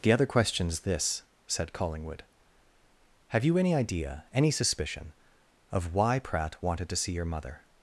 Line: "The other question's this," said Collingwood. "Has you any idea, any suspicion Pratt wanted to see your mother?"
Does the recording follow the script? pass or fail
fail